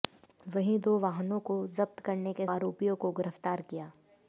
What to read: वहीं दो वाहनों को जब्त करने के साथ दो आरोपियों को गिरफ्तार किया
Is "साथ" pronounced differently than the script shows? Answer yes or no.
yes